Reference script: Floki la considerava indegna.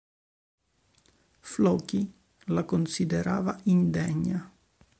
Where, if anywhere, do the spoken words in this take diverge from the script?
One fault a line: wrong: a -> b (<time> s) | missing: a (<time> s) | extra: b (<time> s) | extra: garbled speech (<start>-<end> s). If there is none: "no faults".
no faults